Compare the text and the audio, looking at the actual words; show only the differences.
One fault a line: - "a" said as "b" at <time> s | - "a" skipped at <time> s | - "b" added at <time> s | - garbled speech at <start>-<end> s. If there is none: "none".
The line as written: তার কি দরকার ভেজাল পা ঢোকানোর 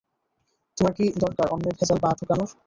- "তার" said as "তোমার" at 0.8 s
- "অন্যের" added at 1.5 s